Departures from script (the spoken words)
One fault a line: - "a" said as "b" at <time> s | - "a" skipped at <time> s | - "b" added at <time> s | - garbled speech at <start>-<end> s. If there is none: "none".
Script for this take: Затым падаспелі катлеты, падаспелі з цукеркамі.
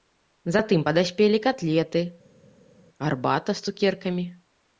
- "падаспелі" said as "гарбата" at 3.1 s